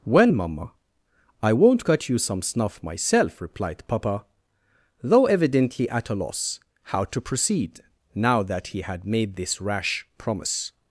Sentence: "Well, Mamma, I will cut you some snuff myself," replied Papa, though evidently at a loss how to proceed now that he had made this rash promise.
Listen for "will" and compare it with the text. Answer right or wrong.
wrong